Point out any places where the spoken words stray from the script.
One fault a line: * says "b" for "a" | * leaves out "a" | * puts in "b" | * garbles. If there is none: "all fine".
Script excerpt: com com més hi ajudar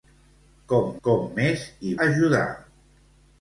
all fine